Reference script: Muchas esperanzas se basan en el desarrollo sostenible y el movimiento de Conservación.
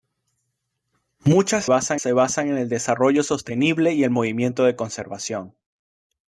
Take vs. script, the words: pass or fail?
fail